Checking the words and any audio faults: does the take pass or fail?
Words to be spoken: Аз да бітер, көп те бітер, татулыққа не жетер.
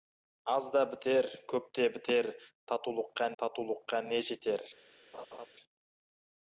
fail